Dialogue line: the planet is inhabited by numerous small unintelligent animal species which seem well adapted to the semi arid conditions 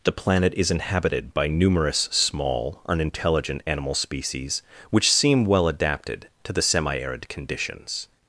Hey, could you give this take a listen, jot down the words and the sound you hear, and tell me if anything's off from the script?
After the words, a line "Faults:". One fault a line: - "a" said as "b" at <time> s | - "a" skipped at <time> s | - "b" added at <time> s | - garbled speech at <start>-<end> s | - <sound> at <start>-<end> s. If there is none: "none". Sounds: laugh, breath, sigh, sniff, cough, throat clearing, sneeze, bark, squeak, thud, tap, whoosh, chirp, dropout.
the planet is inhabited by numerous small unintelligent animal species which seem well adapted to the semi arid conditions
Faults:
none